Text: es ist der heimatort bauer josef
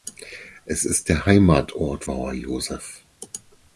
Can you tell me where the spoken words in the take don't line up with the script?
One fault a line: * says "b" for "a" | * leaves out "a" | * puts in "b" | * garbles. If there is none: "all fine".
all fine